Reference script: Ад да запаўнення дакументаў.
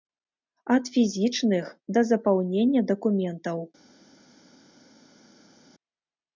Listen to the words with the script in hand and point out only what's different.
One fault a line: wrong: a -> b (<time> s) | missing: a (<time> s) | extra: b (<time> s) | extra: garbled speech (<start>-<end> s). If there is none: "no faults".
extra: фізічных (0.9 s)